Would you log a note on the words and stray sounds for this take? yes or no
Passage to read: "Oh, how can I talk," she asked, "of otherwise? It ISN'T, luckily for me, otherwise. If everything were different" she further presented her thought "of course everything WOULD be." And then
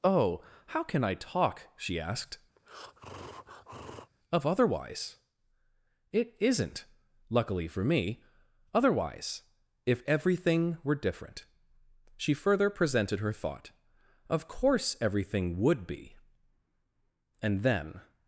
yes